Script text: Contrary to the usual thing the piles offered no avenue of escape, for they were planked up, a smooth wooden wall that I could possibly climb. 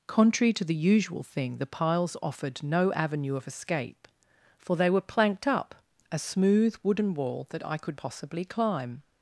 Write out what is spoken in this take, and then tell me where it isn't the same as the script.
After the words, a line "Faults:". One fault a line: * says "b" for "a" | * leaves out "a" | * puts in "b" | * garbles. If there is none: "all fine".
Contrary to the usual thing the piles offered no avenue of escape, for they were planked up, a smooth wooden wall that I could possibly climb.
Faults:
all fine